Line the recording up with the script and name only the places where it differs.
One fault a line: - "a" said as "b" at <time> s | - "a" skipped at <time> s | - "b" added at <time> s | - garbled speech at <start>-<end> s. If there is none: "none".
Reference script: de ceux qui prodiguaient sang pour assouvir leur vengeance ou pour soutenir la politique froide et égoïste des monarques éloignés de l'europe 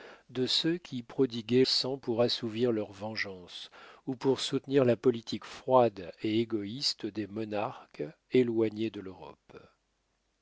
none